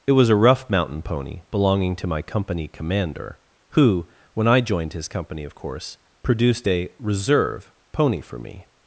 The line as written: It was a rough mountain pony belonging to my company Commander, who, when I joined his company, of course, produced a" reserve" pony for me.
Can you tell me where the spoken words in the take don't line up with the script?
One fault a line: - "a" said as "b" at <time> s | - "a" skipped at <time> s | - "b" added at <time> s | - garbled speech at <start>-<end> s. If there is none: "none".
none